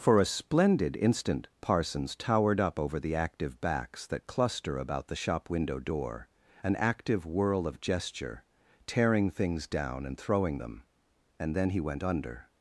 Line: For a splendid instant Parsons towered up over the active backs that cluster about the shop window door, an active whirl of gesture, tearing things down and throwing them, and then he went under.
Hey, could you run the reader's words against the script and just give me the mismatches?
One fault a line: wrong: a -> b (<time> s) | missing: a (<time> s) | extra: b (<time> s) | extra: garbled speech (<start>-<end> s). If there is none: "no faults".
no faults